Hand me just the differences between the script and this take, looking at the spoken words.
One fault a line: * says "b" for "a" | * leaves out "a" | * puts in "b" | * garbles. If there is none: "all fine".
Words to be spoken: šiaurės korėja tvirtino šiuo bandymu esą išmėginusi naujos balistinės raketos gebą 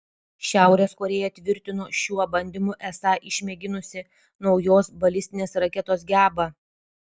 all fine